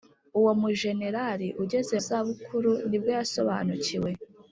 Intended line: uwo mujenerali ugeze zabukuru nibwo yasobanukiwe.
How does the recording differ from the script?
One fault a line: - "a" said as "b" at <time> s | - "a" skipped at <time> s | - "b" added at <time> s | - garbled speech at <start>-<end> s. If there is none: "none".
none